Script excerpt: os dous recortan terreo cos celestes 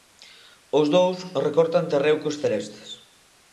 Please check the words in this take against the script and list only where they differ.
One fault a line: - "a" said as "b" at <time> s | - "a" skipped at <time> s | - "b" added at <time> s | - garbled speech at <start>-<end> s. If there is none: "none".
none